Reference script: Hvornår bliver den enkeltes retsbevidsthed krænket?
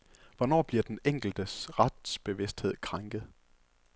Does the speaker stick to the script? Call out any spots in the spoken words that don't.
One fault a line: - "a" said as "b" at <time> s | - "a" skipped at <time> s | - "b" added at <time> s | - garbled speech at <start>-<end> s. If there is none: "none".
none